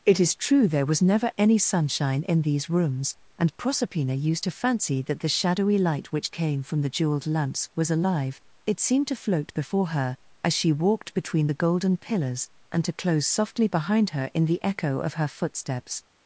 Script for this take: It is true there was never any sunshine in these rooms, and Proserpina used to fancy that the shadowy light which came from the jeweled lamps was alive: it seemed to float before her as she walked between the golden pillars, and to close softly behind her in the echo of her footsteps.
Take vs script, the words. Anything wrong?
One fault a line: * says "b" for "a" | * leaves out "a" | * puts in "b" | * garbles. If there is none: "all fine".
all fine